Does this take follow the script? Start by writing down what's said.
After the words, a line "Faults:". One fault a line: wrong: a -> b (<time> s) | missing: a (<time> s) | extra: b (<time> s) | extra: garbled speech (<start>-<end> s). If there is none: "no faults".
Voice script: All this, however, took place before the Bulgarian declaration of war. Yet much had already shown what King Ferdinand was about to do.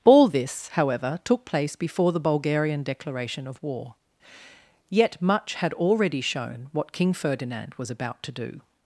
All this, however, took place before the Bulgarian declaration of war. Yet much had already shown what King Ferdinand was about to do.
Faults:
no faults